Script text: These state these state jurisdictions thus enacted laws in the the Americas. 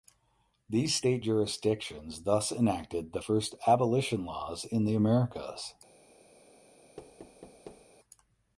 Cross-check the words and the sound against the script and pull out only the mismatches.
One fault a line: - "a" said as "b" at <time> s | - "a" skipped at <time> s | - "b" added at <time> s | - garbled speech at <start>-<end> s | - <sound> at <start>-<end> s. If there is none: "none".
- "these state" skipped at 1.2 s
- "the first abolition" added at 3.1 s
- "the" skipped at 5.0 s
- thud at 7.0-7.9 s